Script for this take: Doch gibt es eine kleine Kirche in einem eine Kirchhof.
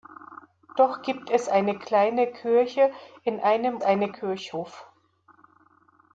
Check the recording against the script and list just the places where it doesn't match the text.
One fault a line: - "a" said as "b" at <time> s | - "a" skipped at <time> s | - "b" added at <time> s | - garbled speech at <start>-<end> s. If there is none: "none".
none